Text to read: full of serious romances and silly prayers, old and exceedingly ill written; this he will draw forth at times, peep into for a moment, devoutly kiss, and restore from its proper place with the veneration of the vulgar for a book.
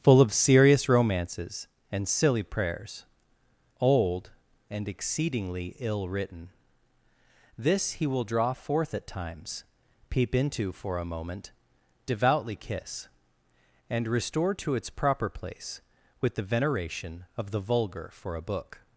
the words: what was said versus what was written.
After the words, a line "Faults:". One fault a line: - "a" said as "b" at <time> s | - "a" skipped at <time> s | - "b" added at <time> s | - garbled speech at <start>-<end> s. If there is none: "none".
full of serious romances and silly prayers, old and exceedingly ill written; this he will draw forth at times, peep into for a moment, devoutly kiss, and restore to its proper place with the veneration of the vulgar for a book.
Faults:
- "from" said as "to" at 14.5 s